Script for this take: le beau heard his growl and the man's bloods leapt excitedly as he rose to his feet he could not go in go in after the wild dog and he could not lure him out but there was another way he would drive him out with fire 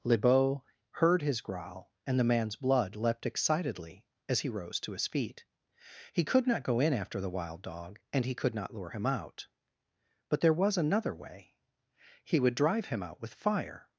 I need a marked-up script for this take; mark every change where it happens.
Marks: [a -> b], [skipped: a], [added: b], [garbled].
le beau heard his growl and the man's [bloods -> blood] leapt excitedly as he rose to his feet he could not go in [skipped: go in] after the wild dog and he could not lure him out but there was another way he would drive him out with fire